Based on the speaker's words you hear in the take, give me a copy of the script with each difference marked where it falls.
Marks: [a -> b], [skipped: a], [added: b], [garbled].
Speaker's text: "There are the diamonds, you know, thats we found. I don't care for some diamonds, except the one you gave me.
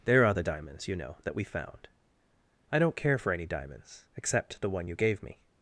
"There are the diamonds, you know, [thats -> that] we found. I don't care for [some -> any] diamonds, except the one you gave me.